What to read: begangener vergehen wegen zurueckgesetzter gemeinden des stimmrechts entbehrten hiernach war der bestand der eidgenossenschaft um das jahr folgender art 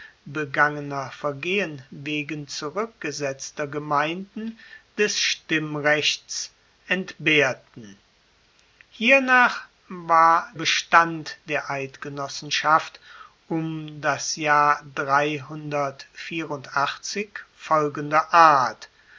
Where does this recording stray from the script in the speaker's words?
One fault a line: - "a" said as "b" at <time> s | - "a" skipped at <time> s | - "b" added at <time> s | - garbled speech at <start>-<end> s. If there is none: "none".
- "der" skipped at 10.5 s